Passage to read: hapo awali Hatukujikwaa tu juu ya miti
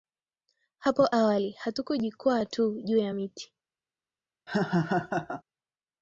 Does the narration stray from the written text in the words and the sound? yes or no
yes